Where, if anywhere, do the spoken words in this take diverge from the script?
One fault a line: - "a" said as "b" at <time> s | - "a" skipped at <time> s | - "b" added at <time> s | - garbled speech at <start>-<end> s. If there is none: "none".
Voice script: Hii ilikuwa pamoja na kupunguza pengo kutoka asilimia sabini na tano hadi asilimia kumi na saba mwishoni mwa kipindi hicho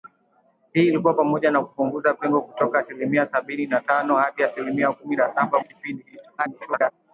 - "mwishoni mwa" skipped at 5.6 s
- garbled speech at 6.4-6.9 s